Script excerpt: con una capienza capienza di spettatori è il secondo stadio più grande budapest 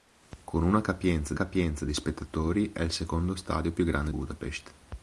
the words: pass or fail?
pass